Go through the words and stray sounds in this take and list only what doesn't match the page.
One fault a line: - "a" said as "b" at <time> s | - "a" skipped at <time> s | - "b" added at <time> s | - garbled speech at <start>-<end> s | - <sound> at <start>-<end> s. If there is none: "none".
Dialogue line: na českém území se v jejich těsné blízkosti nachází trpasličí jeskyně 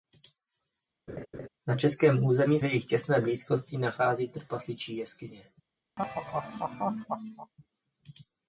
- laugh at 1.1-1.5 s
- "se" skipped at 2.6 s
- laugh at 6.0-7.5 s